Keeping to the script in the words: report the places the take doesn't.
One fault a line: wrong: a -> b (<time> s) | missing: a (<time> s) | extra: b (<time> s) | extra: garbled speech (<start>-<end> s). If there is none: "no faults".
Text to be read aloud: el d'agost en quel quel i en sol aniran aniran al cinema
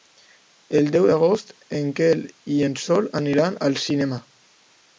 extra: deu (0.9 s)
missing: quel (2.2 s)
missing: aniran (3.6 s)